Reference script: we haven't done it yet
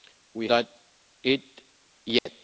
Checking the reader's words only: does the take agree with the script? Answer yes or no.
no